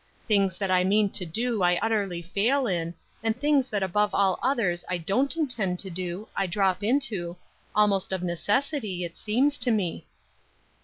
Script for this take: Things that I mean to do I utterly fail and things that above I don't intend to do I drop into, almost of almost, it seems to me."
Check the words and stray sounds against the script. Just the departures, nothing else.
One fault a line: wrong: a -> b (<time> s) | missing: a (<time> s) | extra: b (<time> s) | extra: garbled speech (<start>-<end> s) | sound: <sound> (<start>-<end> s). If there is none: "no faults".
extra: in (2.7 s)
extra: all others (4.1 s)
wrong: almost -> necessity (8.2 s)